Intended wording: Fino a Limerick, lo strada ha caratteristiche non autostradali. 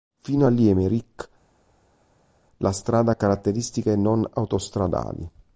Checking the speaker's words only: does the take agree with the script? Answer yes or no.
no